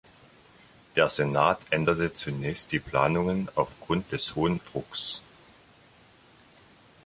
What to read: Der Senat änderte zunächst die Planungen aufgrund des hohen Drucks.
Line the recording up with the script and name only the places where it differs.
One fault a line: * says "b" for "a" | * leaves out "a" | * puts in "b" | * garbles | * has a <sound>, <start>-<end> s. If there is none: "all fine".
all fine